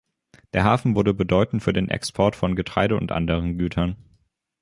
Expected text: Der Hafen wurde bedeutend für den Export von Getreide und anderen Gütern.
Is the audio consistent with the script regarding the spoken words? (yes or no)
yes